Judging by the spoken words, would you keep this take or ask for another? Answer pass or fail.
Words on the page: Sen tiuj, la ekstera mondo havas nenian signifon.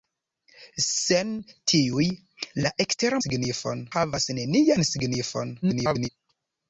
fail